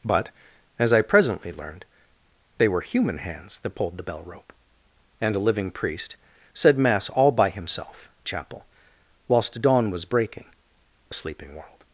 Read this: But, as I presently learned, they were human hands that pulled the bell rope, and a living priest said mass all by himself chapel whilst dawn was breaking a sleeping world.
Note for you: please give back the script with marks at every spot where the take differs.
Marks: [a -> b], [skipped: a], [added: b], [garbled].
But, as I presently learned, they were human hands that pulled the bell rope, and a living priest said mass all by himself chapel whilst dawn was breaking a sleeping world.